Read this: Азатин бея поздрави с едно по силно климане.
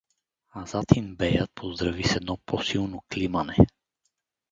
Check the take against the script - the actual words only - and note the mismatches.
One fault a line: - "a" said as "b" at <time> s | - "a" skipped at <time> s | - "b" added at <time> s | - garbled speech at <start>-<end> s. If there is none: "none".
none